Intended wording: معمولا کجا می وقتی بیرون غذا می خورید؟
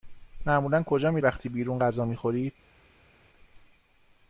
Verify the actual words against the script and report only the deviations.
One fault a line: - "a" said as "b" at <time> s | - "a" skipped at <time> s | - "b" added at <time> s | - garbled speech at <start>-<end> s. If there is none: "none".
none